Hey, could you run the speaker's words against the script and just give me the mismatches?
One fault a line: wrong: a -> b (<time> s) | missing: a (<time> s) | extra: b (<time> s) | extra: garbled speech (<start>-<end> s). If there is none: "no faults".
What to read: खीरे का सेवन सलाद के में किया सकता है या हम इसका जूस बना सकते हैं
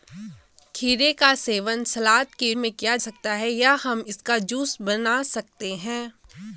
no faults